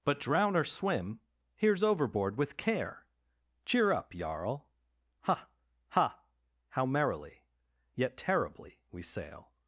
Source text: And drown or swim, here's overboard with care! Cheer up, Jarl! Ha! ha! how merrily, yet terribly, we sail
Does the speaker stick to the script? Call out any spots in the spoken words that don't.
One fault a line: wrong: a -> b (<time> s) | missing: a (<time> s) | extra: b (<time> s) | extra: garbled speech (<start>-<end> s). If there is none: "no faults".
wrong: And -> But (0.0 s)